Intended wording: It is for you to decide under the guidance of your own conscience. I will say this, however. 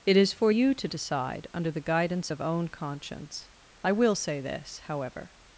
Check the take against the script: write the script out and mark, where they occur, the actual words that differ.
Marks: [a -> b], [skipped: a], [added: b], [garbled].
It is for you to decide under the guidance of [skipped: your] own conscience. I will say this, however.